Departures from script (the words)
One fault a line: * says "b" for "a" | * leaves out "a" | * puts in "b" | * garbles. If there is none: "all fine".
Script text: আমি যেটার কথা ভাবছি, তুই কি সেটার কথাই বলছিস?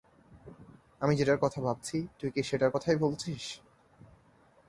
all fine